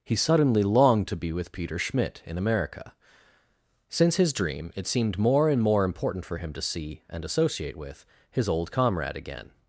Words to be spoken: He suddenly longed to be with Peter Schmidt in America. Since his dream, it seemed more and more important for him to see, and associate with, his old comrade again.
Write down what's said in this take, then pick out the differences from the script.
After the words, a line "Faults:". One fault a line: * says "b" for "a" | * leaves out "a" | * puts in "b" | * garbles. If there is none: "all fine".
He suddenly longed to be with Peter Schmidt in America. Since his dream, it seemed more and more important for him to see, and associate with, his old comrade again.
Faults:
all fine